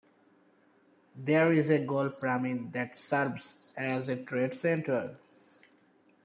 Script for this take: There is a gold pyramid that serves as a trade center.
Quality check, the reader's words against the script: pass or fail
pass